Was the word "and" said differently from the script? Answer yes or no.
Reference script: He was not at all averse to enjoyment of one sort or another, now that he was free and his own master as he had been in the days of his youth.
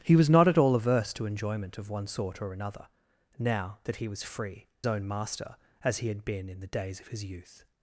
yes